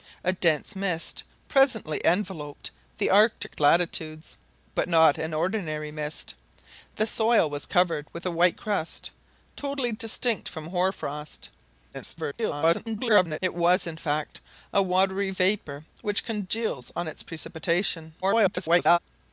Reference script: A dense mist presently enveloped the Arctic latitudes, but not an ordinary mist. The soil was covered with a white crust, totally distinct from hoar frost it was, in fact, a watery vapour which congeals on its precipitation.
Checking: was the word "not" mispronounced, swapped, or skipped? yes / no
no